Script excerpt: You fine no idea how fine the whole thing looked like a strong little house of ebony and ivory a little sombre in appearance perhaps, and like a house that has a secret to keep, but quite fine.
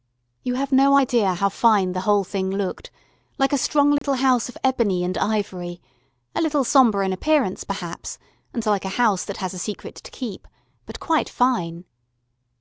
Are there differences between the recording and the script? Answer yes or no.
yes